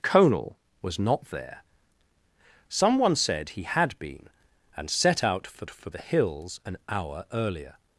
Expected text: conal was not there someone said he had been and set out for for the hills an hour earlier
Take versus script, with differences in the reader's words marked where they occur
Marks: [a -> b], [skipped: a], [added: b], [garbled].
conal was not there someone said he had been and set out for for the hills an hour earlier